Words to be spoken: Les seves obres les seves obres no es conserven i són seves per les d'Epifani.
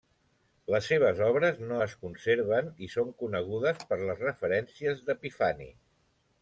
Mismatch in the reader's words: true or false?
true